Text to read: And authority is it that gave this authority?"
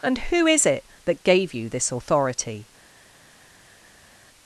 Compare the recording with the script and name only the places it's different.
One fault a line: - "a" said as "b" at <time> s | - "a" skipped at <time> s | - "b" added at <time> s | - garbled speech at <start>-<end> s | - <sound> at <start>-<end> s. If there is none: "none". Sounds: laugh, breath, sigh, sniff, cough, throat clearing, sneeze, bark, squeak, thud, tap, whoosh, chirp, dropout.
- "authority" said as "who" at 0.3 s
- "you" added at 1.5 s